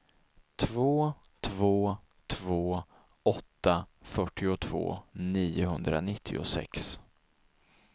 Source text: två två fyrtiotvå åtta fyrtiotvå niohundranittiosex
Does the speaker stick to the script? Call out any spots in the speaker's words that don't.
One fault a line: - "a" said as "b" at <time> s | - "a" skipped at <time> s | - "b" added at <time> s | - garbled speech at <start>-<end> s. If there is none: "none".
- "fyrtiotvå" said as "två" at 2.3 s